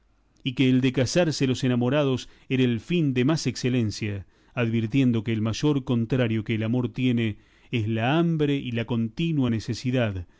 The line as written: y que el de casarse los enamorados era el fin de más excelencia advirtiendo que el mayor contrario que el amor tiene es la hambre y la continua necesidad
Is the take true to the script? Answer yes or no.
yes